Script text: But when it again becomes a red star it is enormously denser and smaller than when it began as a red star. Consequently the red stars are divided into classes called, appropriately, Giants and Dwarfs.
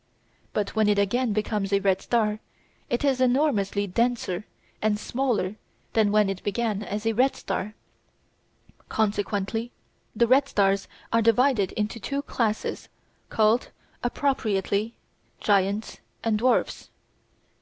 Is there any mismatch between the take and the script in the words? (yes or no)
yes